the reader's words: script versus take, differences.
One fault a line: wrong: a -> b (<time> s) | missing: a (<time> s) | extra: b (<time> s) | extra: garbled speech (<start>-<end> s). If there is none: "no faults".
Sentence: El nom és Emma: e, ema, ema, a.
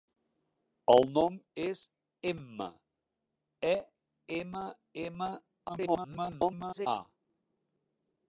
extra: garbled speech (5.7-6.9 s)